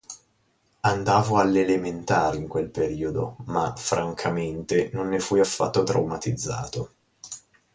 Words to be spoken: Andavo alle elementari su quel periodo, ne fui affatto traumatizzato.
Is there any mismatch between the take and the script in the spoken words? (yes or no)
yes